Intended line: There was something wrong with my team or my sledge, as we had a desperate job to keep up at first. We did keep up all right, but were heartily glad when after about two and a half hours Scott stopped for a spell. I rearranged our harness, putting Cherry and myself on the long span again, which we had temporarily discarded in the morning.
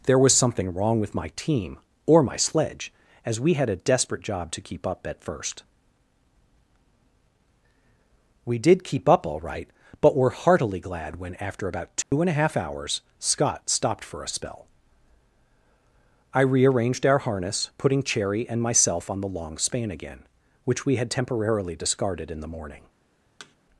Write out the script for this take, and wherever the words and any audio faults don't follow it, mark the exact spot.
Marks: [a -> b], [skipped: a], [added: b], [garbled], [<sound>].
There was something wrong with my team or my sledge, as we had a desperate job to keep up at first. We did keep up all right, but were heartily glad when after about two [dropout] and a half hours Scott stopped for a spell. I rearranged our harness, putting Cherry and myself on the long span again, which we had temporarily discarded in the morning. [thud]